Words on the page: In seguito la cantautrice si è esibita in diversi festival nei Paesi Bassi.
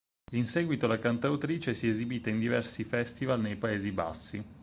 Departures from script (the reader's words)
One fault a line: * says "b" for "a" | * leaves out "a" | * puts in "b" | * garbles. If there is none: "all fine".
all fine